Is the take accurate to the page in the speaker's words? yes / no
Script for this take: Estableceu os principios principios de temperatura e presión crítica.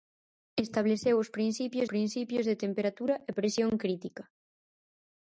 yes